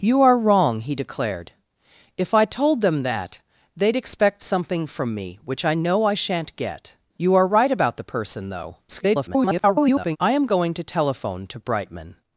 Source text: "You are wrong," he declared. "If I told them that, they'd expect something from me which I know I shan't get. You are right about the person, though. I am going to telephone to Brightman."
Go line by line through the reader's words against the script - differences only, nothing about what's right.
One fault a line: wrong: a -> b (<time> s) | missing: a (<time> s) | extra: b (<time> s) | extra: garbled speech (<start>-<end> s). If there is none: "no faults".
extra: garbled speech (8.9-10.2 s)